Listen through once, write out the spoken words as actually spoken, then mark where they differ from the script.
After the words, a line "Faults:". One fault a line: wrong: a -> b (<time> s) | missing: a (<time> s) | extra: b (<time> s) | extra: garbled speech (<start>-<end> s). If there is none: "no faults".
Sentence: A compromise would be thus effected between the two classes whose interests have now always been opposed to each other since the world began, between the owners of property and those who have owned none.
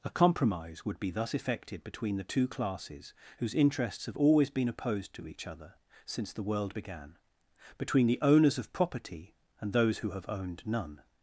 A compromise would be thus effected between the two classes whose interests have always been opposed to each other since the world began, between the owners of property and those who have owned none.
Faults:
missing: now (4.2 s)